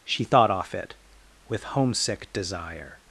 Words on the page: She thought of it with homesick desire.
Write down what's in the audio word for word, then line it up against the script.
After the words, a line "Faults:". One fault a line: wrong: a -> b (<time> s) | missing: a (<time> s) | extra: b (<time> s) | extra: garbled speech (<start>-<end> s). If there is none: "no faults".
She thought off it with homesick desire.
Faults:
wrong: of -> off (0.5 s)